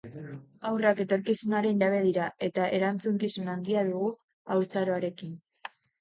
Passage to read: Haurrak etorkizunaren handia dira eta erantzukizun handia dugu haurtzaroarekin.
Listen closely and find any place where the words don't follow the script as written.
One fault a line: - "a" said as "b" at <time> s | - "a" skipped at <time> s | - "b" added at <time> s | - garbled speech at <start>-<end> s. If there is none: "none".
- "handia" said as "jabe" at 1.8 s